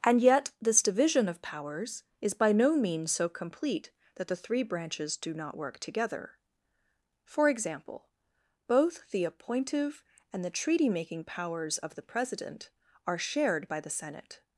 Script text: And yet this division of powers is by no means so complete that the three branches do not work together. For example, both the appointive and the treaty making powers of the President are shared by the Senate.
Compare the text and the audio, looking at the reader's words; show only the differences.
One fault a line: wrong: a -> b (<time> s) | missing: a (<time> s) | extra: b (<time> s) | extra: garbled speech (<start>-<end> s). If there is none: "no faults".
no faults